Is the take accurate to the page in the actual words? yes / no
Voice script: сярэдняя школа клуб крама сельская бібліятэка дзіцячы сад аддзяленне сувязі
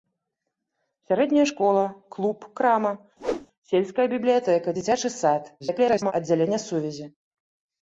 no